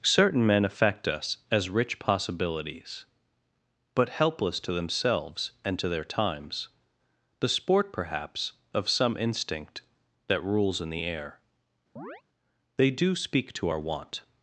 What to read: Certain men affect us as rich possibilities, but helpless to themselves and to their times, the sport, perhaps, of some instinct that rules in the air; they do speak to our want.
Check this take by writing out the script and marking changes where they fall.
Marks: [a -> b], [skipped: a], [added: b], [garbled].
Certain men affect us as rich possibilities, but helpless to themselves and to their times, the sport, perhaps, of some instinct that rules in the air; they do speak to our want.